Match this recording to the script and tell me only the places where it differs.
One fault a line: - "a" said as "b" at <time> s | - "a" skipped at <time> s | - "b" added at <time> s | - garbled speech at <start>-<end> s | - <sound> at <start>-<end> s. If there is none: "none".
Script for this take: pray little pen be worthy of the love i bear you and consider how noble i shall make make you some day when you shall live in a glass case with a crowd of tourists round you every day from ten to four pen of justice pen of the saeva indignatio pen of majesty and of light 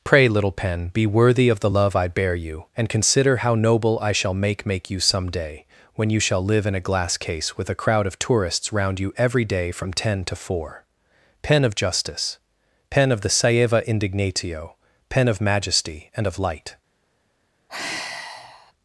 - sigh at 17.7-18.7 s